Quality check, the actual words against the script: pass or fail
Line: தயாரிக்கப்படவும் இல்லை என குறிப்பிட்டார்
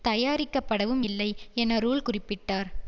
fail